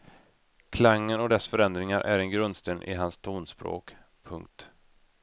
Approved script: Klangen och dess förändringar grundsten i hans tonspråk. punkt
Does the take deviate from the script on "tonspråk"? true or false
false